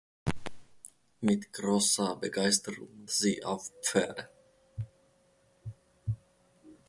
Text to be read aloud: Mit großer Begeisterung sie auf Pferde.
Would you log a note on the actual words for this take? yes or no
no